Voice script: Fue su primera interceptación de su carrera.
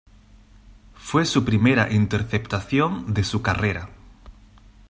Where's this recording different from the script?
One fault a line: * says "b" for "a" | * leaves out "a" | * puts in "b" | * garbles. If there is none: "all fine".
all fine